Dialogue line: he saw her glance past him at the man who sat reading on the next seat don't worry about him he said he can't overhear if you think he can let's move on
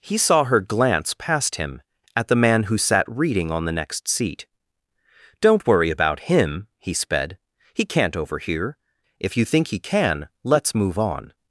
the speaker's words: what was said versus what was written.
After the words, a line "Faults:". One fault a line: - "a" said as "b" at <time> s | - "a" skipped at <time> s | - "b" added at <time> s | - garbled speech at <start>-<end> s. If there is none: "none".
he saw her glance past him at the man who sat reading on the next seat don't worry about him he sped he can't overhear if you think he can let's move on
Faults:
- "said" said as "sped" at 6.9 s